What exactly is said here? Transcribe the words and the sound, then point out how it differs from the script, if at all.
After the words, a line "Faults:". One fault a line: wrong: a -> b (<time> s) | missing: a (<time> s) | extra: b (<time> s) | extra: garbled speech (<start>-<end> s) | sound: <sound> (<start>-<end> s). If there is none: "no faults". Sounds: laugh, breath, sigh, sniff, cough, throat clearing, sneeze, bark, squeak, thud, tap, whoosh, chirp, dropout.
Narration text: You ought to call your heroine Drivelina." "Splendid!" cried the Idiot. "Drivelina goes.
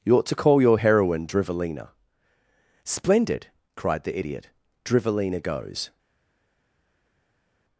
You ought to call your heroine Drivelina." "Splendid!" cried the Idiot. "Drivelina goes.
Faults:
no faults